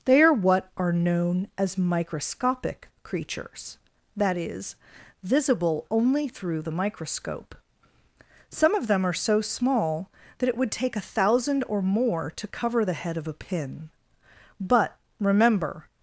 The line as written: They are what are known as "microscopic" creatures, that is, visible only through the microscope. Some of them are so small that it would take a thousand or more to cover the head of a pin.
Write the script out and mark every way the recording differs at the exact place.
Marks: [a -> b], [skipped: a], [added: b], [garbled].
They are what are known as "microscopic" creatures, that is, visible only through the microscope. Some of them are so small that it would take a thousand or more to cover the head of a pin. [added: But remember]